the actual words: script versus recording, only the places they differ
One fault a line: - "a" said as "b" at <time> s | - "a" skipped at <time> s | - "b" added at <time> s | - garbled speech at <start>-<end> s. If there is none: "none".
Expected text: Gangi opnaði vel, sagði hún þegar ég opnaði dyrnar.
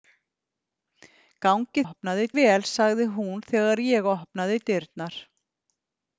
none